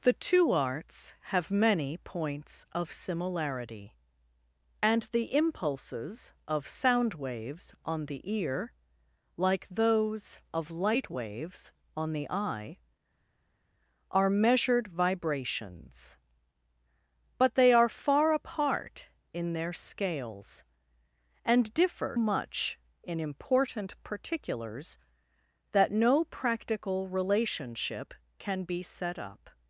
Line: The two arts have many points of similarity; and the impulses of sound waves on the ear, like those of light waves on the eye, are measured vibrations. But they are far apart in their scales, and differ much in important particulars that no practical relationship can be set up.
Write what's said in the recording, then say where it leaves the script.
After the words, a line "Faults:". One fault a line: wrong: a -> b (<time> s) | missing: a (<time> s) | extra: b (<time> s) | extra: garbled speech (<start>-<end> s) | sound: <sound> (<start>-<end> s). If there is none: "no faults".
The two arts have many points of similarity; and the impulses of sound waves on the ear, like those of light waves on the eye, are measured vibrations. But they are far apart in their scales, and differ much in important particulars that no practical relationship can be set up.
Faults:
no faults